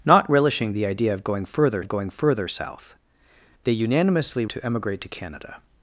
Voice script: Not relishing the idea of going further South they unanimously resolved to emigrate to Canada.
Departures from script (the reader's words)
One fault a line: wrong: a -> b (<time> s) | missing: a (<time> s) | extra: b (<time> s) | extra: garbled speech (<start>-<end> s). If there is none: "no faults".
extra: of going further (1.8 s)
missing: resolved (4.4 s)